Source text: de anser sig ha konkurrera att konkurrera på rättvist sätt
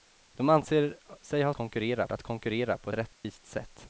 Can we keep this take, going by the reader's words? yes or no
yes